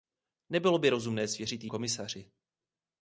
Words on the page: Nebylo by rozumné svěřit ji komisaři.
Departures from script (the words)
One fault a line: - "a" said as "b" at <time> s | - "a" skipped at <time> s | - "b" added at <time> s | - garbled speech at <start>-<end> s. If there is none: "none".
none